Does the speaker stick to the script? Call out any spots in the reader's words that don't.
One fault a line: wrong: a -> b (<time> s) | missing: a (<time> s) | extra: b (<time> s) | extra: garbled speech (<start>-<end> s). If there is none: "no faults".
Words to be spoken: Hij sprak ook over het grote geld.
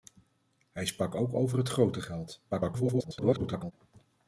extra: garbled speech (2.5-3.7 s)